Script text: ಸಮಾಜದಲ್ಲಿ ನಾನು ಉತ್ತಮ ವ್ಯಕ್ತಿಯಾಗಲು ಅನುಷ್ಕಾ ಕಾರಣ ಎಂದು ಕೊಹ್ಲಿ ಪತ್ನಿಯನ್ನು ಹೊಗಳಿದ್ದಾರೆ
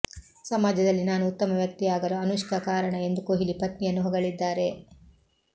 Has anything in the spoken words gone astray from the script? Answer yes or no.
no